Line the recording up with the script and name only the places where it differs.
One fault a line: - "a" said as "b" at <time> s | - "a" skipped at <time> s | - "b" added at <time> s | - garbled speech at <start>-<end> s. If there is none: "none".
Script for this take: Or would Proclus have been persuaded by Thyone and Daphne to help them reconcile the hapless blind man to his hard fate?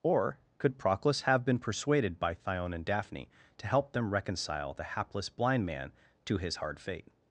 - "would" said as "could" at 0.6 s